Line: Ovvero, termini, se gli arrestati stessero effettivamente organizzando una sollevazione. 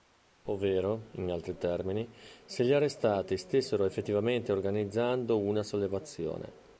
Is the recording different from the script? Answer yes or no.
yes